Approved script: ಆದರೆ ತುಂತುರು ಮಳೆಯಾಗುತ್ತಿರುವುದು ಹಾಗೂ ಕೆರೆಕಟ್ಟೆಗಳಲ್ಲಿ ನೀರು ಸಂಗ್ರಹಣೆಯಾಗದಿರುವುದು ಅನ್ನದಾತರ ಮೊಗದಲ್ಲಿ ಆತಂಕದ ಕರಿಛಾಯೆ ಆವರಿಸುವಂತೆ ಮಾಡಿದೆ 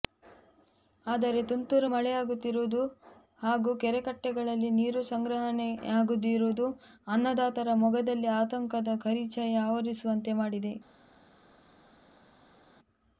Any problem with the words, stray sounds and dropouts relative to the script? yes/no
no